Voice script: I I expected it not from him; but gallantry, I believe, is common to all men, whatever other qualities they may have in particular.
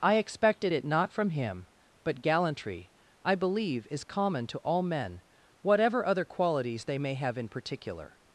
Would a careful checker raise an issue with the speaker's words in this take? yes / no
yes